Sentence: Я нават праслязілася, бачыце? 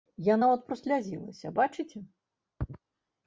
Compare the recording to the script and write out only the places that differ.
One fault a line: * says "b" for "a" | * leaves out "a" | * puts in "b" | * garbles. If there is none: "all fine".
all fine